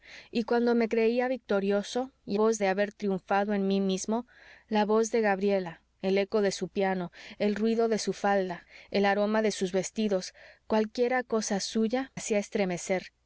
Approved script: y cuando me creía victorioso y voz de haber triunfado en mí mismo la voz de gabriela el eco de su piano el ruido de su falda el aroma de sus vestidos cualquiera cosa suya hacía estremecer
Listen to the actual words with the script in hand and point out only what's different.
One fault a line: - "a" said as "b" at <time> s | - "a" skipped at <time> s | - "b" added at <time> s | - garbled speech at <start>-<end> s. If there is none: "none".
none